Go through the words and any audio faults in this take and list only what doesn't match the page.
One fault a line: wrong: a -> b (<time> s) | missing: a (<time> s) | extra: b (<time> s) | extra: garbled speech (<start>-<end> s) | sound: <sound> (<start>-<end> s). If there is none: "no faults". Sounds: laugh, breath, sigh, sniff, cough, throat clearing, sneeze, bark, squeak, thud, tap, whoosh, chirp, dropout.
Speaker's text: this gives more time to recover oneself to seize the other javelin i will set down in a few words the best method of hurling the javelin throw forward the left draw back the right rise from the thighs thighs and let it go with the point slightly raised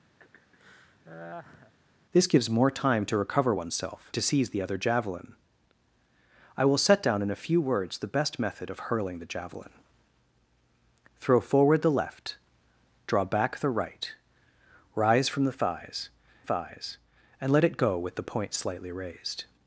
sound: laugh (0.2-1.7 s)